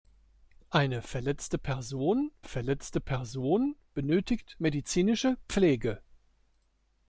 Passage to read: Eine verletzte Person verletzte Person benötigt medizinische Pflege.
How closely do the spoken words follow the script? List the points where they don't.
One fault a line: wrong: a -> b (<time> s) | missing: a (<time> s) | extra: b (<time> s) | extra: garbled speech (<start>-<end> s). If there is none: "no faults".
no faults